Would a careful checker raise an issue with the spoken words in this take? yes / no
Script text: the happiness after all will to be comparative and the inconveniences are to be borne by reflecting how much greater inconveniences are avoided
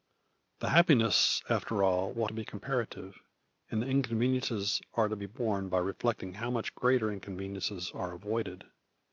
no